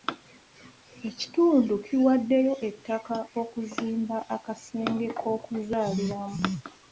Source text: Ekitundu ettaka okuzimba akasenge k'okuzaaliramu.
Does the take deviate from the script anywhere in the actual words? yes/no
yes